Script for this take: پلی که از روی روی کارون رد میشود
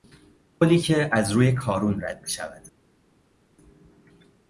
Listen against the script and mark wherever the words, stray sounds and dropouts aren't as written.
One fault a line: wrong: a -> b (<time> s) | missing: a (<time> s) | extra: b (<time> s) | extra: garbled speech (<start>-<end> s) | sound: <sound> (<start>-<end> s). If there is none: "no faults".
missing: روی (1.5 s)